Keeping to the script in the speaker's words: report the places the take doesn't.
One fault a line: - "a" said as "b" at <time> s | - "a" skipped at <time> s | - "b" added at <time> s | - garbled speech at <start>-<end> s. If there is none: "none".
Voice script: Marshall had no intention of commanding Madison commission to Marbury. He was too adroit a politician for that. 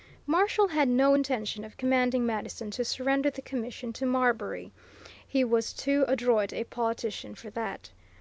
- "to surrender the" added at 2.7 s